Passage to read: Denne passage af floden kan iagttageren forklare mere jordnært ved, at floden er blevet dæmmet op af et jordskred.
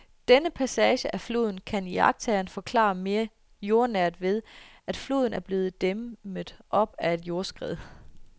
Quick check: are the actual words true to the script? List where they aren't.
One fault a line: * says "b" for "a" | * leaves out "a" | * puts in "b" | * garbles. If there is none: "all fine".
all fine